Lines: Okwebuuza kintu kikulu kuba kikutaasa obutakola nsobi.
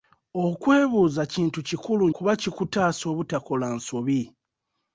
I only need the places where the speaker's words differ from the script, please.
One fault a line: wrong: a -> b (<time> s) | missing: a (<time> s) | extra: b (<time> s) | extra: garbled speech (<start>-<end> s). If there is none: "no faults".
no faults